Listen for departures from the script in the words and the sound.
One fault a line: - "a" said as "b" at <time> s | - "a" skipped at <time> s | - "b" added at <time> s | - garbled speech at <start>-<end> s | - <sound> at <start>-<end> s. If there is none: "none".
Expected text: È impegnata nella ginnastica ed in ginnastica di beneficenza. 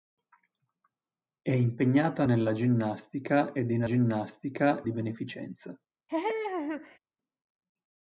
- laugh at 6.1-7.0 s